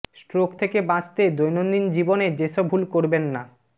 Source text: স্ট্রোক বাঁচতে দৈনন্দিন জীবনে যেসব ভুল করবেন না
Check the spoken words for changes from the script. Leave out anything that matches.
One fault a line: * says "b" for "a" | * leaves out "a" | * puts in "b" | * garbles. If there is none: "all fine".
* puts in "থেকে"